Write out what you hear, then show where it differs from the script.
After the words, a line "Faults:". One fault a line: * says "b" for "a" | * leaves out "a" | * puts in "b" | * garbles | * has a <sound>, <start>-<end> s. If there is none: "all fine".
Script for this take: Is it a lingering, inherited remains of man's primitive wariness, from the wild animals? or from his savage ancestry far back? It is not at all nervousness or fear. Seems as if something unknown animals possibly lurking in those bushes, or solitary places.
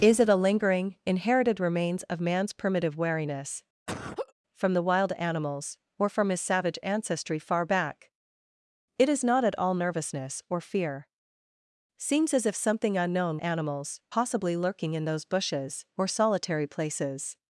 Is it a lingering, inherited remains of man's primitive wariness, from the wild animals? or from his savage ancestry far back? It is not at all nervousness or fear. Seems as if something unknown animals possibly lurking in those bushes, or solitary places.
Faults:
* has a laugh, 3.9-4.3 s